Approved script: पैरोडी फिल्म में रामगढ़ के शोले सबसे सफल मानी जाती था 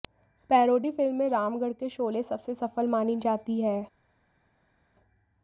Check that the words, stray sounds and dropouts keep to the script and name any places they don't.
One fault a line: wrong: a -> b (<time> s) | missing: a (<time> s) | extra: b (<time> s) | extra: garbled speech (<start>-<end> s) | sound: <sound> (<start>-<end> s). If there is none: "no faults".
wrong: था -> है (3.6 s)